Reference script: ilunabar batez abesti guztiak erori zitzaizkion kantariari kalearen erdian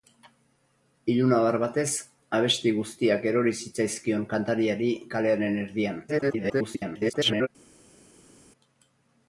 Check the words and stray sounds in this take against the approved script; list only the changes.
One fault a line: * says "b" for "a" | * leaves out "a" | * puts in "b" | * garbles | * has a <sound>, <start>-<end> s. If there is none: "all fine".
* garbles